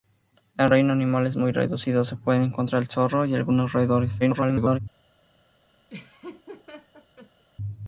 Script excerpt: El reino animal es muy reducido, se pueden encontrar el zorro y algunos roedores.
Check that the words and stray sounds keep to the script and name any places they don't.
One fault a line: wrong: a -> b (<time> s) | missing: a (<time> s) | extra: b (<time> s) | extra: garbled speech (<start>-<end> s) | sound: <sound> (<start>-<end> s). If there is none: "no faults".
extra: garbled speech (4.2-4.8 s)
sound: laugh (5.9-7.4 s)